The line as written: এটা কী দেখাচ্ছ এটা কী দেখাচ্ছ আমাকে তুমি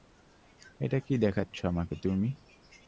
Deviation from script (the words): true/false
true